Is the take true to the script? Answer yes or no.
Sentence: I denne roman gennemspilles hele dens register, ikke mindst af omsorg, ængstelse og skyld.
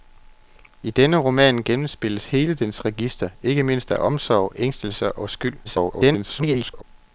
no